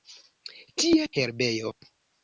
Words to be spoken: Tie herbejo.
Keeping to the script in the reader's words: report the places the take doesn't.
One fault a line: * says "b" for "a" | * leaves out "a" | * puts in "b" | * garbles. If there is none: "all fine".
all fine